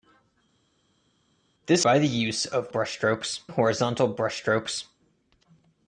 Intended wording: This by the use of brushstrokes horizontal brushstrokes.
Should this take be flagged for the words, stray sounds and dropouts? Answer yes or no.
no